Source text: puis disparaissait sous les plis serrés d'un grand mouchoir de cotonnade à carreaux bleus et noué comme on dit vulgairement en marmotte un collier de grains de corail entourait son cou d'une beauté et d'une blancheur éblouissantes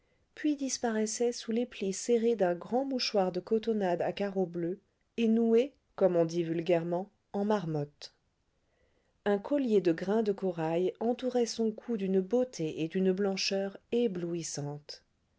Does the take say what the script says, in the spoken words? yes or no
yes